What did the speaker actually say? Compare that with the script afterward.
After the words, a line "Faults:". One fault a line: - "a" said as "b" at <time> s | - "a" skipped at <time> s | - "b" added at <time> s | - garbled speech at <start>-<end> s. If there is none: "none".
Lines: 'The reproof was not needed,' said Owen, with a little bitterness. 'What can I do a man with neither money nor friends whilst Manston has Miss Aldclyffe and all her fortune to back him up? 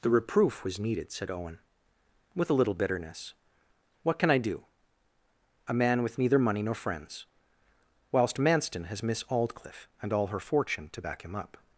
'The reproof was needed,' said Owen, with a little bitterness. 'What can I do a man with neither money nor friends whilst Manston has Miss Aldclyffe and all her fortune to back him up?
Faults:
- "not" skipped at 0.8 s